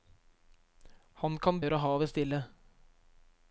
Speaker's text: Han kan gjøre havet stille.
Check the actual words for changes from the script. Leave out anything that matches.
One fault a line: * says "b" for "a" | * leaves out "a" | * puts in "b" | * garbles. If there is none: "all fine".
all fine